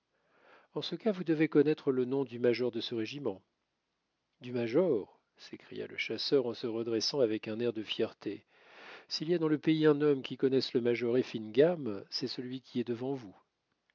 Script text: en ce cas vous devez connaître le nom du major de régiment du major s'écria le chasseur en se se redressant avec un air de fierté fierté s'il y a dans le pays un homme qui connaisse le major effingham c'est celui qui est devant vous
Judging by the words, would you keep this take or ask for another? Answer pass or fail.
fail